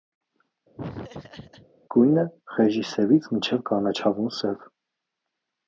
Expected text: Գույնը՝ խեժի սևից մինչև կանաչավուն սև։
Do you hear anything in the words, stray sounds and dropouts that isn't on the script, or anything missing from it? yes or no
yes